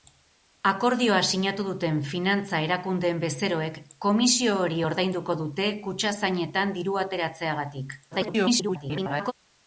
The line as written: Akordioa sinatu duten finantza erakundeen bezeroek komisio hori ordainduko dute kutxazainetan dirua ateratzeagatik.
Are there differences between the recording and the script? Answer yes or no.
yes